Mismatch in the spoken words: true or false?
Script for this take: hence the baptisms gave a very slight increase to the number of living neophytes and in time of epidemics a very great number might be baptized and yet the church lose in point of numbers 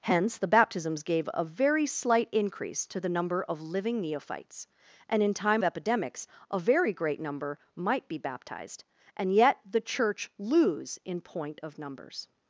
true